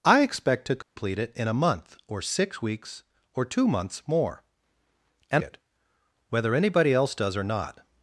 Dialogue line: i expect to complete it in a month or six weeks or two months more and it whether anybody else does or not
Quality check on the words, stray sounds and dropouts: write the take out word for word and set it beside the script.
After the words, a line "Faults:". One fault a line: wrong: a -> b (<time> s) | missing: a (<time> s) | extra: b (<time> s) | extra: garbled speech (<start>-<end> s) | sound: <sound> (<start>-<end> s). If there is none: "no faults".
i expect to complete it in a month or six weeks or two months more and it whether anybody else does or not
Faults:
sound: dropout (0.8-1.0 s)